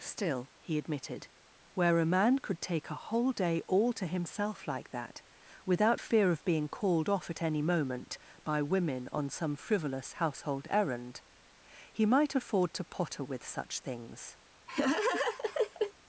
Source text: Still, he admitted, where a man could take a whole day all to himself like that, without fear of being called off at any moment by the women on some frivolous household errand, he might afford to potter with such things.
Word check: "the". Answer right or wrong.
wrong